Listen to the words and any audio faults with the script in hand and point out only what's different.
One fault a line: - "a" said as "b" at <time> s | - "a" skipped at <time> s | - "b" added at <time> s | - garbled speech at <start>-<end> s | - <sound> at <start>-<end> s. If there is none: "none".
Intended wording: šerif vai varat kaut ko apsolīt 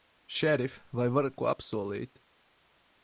- "kaut" skipped at 1.4 s